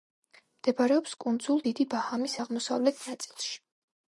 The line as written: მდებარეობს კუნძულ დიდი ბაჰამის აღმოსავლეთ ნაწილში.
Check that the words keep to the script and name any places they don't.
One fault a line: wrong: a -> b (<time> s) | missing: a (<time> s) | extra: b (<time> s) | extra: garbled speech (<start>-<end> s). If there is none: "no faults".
no faults